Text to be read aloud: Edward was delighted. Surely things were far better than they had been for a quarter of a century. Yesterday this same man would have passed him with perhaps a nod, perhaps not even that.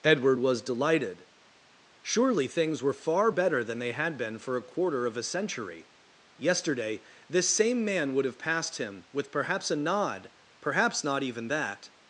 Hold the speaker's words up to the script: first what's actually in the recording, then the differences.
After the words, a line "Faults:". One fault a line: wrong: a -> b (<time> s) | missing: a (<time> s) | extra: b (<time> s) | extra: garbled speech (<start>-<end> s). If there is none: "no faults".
Edward was delighted. Surely things were far better than they had been for a quarter of a century. Yesterday this same man would have passed him with perhaps a nod, perhaps not even that.
Faults:
no faults